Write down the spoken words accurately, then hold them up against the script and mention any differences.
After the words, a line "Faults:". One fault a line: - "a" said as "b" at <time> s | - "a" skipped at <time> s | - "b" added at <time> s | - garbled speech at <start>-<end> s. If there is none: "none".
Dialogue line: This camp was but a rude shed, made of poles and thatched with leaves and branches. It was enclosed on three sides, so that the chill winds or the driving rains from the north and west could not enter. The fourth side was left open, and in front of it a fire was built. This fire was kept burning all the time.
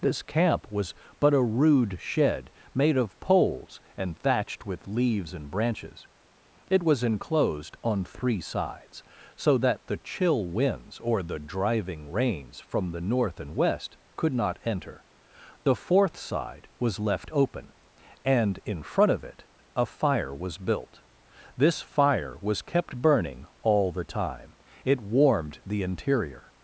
This camp was but a rude shed, made of poles and thatched with leaves and branches. It was enclosed on three sides, so that the chill winds or the driving rains from the north and west could not enter. The fourth side was left open, and in front of it a fire was built. This fire was kept burning all the time. It warmed the interior
Faults:
- "It warmed the interior" added at 24.8 s